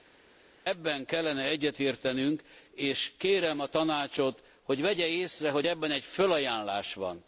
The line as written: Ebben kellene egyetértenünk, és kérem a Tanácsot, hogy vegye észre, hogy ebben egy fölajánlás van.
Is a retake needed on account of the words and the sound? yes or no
no